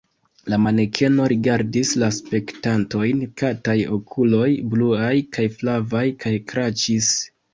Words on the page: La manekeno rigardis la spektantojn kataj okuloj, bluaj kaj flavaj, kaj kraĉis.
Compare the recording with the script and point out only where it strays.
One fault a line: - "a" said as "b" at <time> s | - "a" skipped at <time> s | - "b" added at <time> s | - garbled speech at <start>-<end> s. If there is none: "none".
none